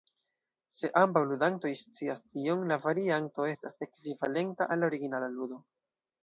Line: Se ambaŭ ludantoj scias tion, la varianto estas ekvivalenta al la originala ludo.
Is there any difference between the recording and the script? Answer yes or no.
no